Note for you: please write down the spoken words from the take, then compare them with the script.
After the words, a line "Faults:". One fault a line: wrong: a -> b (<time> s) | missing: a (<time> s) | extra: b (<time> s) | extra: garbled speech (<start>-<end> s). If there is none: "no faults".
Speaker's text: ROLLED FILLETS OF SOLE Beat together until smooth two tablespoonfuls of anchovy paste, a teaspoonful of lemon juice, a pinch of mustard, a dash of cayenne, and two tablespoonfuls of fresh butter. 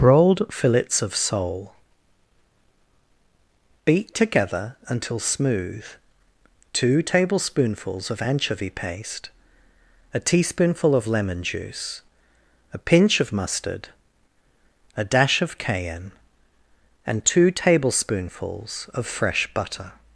Broiled FILLETS OF SOLE Beat together until smooth two tablespoonfuls of anchovy paste, a teaspoonful of lemon juice, a pinch of mustard, a dash of cayenne, and two tablespoonfuls of fresh butter.
Faults:
wrong: ROLLED -> Broiled (0.0 s)